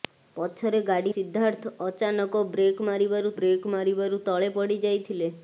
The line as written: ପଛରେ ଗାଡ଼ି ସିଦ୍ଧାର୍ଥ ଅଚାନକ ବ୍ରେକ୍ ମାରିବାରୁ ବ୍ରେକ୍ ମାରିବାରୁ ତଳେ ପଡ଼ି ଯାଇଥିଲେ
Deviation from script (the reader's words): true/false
false